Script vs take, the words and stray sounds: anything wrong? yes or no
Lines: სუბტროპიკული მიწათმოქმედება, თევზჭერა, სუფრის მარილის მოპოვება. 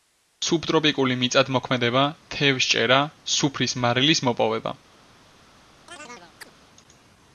yes